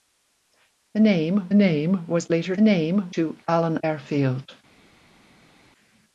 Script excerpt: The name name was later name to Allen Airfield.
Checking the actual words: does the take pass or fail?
pass